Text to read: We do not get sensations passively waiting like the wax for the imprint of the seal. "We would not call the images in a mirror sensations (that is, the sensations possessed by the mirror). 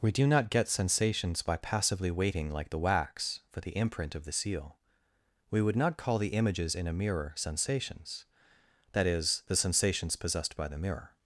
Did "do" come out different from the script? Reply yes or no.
no